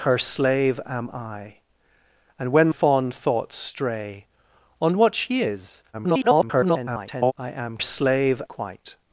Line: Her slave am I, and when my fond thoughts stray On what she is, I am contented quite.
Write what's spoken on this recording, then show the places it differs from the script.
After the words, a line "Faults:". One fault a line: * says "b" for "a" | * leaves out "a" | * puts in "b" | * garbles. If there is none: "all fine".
Her slave am I, and when fond thoughts stray On what she is, [garbled] I am slave quite.
Faults:
* leaves out "my"
* garbles
* says "slave" for "contented"